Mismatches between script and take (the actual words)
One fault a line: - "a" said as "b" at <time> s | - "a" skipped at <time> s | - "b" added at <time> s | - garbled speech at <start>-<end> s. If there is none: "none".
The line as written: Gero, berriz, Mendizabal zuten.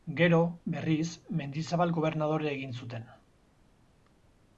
- "gobernadore egin" added at 2.0 s